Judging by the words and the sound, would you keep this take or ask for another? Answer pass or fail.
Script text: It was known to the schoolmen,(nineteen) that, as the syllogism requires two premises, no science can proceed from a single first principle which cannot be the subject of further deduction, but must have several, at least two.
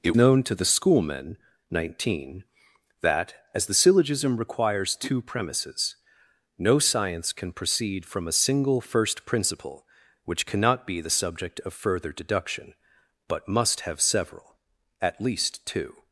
fail